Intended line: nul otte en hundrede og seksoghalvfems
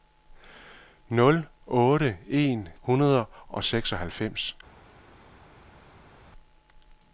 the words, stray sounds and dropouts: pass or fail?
pass